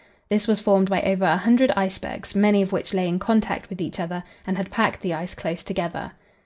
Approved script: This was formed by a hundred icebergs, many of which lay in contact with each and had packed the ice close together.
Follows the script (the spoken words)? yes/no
no